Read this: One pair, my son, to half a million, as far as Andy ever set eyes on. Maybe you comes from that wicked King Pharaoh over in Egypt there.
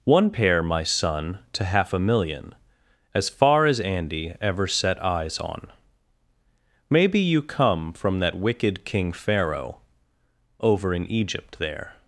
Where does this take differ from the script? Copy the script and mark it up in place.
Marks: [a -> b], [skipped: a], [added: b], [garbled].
One pair, my son, to half a million, as far as Andy ever set eyes on. Maybe you [comes -> come] from that wicked King Pharaoh over in Egypt there.